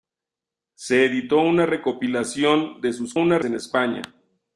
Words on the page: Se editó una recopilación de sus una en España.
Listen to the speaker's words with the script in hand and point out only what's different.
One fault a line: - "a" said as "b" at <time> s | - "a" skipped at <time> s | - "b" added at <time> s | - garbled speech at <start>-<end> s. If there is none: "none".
none